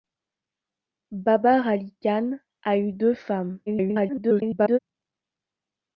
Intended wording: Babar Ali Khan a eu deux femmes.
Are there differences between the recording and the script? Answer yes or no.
yes